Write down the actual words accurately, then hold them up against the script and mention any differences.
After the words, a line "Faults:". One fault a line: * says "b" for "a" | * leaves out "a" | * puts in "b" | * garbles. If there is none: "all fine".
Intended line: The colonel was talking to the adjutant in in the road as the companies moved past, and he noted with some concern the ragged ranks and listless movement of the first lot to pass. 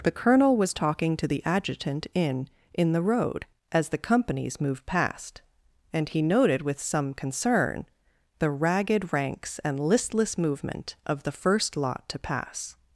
The colonel was talking to the adjutant in in the road as the companies moved past, and he noted with some concern the ragged ranks and listless movement of the first lot to pass.
Faults:
all fine